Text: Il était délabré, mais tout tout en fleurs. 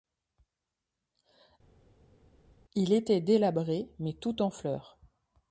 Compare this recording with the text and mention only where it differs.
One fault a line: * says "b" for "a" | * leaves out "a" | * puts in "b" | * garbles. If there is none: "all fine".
* leaves out "tout"